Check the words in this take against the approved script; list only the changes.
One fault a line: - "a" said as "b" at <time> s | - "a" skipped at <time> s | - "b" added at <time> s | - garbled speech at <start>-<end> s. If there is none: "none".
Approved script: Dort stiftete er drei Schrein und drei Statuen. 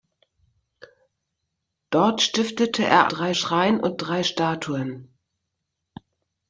none